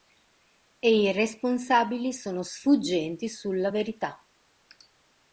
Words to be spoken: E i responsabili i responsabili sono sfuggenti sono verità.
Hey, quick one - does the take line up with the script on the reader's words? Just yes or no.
no